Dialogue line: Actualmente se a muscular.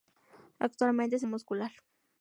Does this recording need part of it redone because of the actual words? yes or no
no